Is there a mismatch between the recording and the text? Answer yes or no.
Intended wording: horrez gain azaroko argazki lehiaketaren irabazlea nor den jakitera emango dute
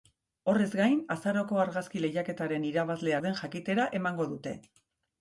yes